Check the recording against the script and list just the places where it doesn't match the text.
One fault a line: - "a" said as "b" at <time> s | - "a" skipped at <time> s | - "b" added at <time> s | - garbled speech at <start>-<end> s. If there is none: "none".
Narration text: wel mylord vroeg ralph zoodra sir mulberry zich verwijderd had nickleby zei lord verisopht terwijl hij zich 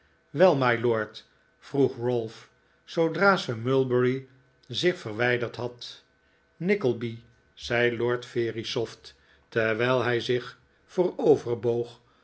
none